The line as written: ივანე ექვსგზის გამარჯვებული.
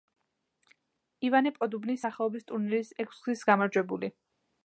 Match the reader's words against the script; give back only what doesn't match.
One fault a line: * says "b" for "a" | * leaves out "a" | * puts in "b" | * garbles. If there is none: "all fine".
* puts in "პოდუბნის სახელობის ტურნირის"